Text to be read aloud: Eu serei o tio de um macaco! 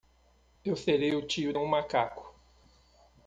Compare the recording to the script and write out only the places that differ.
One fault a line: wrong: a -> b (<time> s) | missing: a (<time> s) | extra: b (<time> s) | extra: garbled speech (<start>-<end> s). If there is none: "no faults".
missing: de (1.5 s)